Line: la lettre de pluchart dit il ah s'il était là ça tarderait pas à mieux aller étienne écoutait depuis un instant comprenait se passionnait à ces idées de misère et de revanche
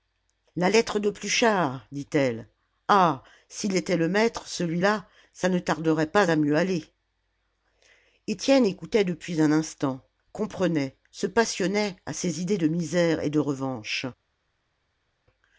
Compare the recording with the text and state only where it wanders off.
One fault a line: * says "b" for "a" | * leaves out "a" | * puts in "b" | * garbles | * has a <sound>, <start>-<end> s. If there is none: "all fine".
* says "elle" for "il"
* puts in "le maître celui"
* puts in "ne"